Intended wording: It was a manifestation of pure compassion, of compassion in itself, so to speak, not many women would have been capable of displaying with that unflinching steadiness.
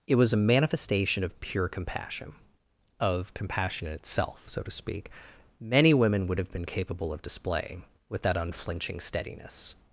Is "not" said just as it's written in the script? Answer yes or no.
no